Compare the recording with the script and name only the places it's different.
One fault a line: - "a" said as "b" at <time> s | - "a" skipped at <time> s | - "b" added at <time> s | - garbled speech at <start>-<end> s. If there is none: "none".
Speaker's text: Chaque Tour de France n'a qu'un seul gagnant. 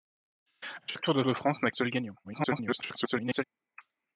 - "de" added at 1.2 s
- "qu'un" skipped at 1.7 s
- garbled speech at 2.2-3.4 s